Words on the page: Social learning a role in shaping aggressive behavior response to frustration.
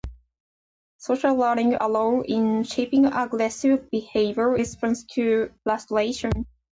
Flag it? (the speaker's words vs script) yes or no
no